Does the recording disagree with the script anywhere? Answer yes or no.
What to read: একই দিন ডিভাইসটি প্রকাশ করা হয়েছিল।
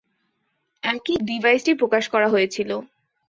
yes